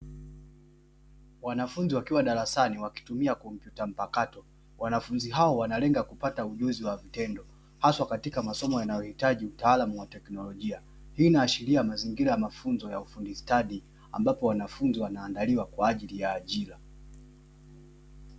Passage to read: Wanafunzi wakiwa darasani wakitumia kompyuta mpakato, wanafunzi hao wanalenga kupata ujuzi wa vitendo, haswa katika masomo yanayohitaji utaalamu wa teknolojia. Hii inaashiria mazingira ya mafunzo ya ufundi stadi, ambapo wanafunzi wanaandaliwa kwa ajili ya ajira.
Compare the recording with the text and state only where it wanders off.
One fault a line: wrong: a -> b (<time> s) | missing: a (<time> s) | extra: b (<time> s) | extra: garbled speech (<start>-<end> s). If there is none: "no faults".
no faults